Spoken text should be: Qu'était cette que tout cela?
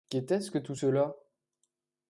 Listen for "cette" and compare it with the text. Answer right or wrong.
wrong